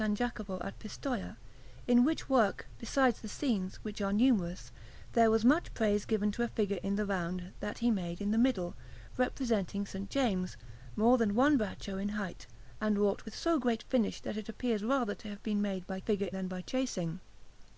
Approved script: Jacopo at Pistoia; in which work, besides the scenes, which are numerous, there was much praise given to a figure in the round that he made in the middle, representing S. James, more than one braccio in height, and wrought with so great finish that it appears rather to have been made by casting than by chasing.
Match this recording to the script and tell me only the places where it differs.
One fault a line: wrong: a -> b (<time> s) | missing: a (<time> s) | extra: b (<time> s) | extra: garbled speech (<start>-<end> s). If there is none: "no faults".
wrong: casting -> figure (16.0 s)